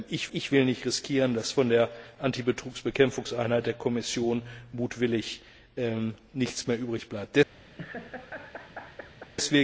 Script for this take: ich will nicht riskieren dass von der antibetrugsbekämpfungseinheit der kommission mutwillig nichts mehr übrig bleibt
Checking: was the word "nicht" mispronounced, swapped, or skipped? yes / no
no